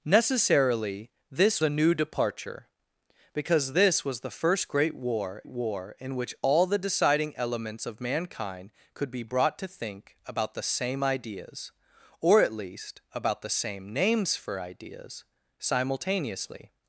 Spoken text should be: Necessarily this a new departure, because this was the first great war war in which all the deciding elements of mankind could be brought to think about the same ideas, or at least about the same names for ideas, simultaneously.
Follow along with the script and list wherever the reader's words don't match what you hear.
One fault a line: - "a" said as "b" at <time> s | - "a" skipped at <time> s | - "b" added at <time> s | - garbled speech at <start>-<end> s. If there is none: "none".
none